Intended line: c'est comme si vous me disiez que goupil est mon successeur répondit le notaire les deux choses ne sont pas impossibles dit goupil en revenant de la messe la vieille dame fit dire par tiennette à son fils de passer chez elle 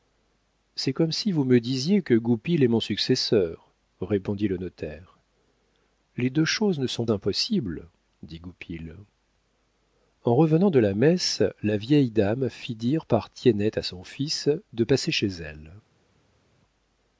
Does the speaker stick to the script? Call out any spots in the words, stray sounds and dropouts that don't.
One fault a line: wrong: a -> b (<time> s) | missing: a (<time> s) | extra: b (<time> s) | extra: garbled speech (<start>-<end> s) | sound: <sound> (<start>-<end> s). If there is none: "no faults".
missing: pas (7.0 s)